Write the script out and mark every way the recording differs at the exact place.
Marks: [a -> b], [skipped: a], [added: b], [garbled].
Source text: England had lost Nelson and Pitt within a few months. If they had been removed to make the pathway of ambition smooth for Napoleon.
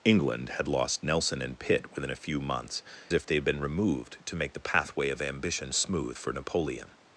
England had lost Nelson and Pitt within a few months. If they had been removed to make the pathway of ambition smooth for Napoleon.